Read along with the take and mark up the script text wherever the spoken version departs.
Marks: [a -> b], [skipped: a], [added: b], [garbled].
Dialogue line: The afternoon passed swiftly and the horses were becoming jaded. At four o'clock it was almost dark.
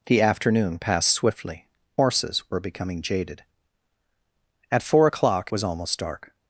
The afternoon passed swiftly [skipped: and the] horses were becoming jaded. At four o'clock [skipped: it] was almost dark.